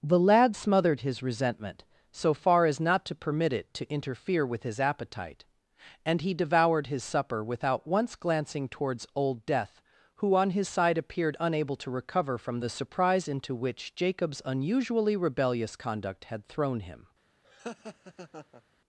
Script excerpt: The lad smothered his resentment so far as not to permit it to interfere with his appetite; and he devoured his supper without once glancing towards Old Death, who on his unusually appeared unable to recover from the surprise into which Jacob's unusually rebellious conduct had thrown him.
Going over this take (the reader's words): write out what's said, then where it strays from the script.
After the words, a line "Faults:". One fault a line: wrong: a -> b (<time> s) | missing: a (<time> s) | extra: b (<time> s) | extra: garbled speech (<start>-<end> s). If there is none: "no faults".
The lad smothered his resentment so far as not to permit it to interfere with his appetite; and he devoured his supper without once glancing towards Old Death, who on his side appeared unable to recover from the surprise into which Jacob's unusually rebellious conduct had thrown him.
Faults:
wrong: unusually -> side (10.7 s)